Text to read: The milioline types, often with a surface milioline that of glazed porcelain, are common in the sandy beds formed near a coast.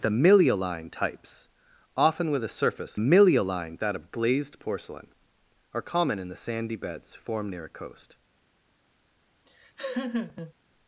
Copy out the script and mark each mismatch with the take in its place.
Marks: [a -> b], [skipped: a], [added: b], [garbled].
The milioline types, often with a surface milioline that of glazed porcelain, are common in the sandy beds formed near a coast.